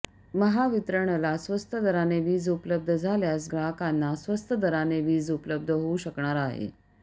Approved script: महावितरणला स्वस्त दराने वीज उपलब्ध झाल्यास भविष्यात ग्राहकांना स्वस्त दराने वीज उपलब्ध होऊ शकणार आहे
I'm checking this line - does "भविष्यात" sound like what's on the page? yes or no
no